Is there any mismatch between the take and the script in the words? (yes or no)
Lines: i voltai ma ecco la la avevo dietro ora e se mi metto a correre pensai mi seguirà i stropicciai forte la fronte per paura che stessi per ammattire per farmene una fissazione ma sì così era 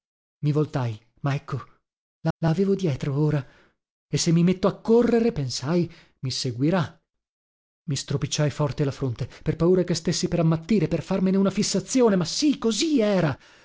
no